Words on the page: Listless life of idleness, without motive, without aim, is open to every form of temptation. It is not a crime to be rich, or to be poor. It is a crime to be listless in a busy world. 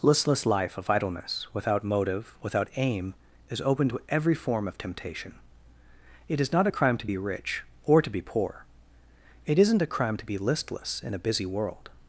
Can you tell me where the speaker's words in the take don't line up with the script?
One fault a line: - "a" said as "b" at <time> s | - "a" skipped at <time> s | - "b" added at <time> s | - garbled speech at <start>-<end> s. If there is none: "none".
- "is" said as "isn't" at 9.6 s